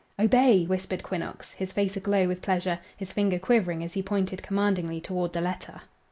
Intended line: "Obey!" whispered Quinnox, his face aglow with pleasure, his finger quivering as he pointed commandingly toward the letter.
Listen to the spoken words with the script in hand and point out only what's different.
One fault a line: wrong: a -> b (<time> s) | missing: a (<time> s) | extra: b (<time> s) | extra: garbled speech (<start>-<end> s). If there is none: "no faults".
no faults